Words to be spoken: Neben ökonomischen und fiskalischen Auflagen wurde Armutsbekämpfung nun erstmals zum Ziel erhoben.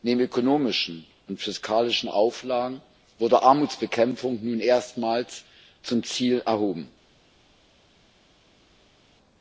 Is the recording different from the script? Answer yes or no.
no